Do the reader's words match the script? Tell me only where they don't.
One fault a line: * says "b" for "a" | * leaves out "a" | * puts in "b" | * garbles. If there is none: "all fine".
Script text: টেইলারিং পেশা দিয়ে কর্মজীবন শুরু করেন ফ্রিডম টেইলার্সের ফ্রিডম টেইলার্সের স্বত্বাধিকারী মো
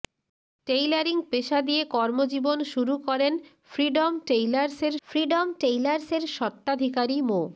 all fine